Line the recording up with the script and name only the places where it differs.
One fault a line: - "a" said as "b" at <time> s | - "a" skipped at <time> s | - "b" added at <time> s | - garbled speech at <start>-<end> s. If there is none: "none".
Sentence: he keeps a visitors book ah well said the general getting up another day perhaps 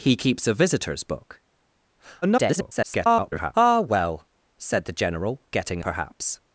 - garbled speech at 2.2-3.5 s
- "up another day" skipped at 5.8 s